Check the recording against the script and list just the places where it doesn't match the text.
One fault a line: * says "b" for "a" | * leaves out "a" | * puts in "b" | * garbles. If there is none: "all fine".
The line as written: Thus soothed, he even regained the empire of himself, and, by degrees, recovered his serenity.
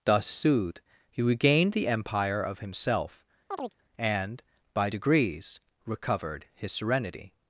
* leaves out "even"